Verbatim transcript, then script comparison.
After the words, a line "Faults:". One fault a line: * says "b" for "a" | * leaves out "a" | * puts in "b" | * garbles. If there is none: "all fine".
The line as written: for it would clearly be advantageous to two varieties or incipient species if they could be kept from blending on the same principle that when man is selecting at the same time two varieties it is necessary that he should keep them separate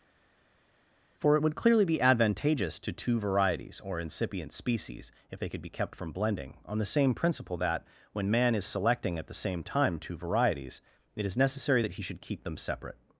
for it would clearly be advantageous to two varieties or incipient species if they could be kept from blending on the same principle that when man is selecting at the same time two varieties it is necessary that he should keep them separate
Faults:
all fine